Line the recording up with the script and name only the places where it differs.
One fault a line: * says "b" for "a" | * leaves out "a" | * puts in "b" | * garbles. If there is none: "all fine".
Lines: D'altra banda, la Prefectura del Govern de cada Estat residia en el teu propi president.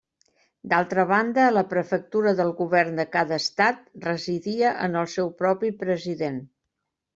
* says "seu" for "teu"